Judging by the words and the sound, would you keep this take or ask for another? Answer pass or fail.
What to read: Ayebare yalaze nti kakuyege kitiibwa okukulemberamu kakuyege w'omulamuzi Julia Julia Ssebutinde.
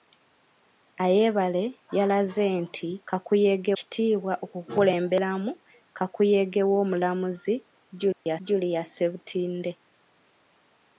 fail